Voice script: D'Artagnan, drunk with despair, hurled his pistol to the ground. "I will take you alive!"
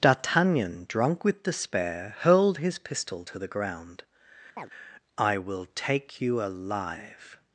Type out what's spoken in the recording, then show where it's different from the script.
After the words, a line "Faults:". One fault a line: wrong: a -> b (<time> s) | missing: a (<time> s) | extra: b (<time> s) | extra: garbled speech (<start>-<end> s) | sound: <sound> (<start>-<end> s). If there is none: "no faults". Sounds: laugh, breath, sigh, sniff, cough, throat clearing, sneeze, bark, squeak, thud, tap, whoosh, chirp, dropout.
D'Artagnan, drunk with despair, hurled his pistol to the ground. "I will take you alive!"
Faults:
sound: chirp (4.6-4.7 s)